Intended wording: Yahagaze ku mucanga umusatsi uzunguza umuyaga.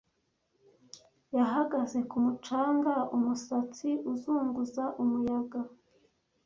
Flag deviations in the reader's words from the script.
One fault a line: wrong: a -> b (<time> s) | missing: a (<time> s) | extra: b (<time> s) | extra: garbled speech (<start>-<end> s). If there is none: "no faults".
no faults